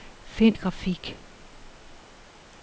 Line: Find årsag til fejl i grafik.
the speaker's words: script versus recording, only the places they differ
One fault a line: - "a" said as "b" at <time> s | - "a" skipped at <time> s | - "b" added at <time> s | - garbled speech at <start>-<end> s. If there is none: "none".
- "årsag til fejl" skipped at 0.6 s